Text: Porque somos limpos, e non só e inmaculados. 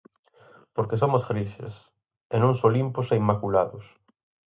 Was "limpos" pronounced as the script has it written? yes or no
no